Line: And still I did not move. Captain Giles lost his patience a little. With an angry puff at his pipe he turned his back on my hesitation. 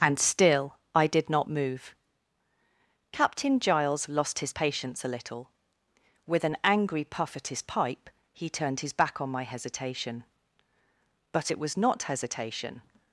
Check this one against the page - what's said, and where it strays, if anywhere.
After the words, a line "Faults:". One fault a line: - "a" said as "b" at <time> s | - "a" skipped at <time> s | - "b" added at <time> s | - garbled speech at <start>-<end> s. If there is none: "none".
And still I did not move. Captain Giles lost his patience a little. With an angry puff at his pipe he turned his back on my hesitation. But it was not hesitation
Faults:
- "But it was not hesitation" added at 11.3 s